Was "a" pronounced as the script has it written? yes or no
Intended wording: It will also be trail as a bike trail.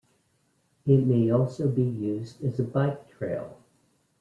yes